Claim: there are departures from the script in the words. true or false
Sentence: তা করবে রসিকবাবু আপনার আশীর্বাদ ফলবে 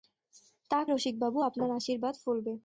true